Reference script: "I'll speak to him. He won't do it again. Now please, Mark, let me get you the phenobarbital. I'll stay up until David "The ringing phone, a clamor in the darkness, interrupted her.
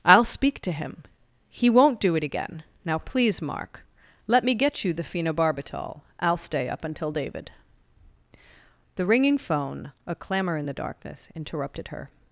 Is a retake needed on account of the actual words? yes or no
no